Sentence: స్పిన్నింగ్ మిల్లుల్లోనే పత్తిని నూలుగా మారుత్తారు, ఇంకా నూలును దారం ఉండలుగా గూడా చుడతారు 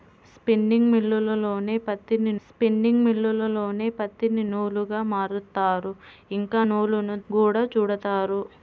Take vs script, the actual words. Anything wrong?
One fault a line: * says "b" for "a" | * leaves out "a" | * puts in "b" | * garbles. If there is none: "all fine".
* puts in "స్పిన్నింగ్ మిల్లుల్లోనే పత్తిని"
* leaves out "దారం ఉండలుగా"